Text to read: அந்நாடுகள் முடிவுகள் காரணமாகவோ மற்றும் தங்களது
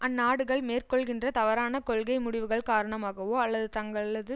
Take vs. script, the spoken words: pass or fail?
fail